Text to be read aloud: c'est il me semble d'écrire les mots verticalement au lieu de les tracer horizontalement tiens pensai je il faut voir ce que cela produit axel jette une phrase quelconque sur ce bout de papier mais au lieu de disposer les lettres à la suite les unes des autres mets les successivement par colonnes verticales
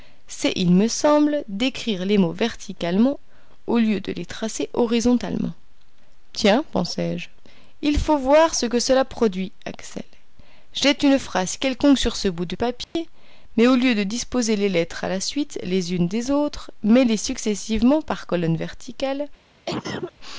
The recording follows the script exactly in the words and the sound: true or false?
false